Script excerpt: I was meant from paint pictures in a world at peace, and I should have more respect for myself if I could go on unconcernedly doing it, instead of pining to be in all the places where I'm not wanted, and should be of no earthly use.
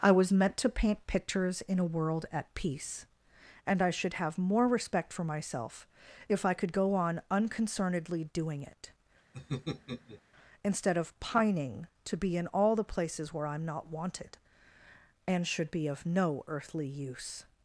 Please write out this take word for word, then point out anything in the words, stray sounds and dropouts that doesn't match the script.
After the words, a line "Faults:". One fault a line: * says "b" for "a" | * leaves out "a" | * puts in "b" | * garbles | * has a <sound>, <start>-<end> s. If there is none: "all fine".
I was meant to paint pictures in a world at peace, and I should have more respect for myself if I could go on unconcernedly doing it, instead of pining to be in all the places where I'm not wanted, and should be of no earthly use.
Faults:
* says "to" for "from"
* has a laugh, 9.3-10.2 s